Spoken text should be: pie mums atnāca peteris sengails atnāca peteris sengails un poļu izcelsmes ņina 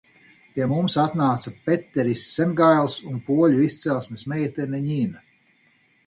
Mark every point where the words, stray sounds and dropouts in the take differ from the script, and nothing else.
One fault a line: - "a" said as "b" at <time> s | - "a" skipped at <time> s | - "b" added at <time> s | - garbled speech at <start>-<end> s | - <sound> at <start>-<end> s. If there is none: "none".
- "atnāca peteris sengails" skipped at 2.9 s
- "meitene" added at 4.3 s